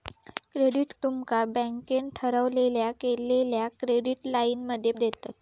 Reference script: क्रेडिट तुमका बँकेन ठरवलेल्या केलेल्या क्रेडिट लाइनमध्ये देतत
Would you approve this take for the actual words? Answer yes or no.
yes